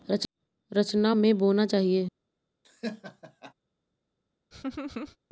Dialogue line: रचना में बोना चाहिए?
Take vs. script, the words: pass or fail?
pass